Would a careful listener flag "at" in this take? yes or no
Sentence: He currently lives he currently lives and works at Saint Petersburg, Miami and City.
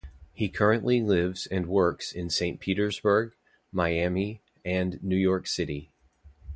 yes